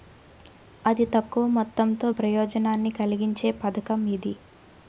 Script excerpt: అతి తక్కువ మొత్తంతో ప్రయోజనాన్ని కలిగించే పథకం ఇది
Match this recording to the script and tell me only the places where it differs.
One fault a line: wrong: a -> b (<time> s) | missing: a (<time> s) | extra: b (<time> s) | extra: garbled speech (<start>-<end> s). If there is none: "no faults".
no faults